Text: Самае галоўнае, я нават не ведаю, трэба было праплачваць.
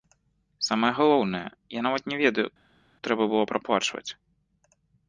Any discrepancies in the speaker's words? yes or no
no